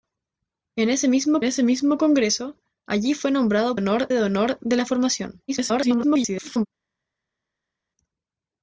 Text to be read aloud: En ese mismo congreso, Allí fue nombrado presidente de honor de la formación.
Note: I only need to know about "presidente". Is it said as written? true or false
false